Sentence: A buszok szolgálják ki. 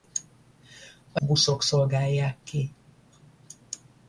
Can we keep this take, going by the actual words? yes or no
yes